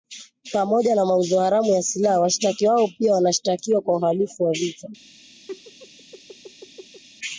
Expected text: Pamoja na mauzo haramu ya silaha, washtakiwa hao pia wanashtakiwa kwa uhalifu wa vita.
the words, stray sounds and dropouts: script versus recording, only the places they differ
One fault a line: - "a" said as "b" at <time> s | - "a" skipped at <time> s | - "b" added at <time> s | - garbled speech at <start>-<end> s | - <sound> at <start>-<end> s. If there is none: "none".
- laugh at 5.5-7.0 s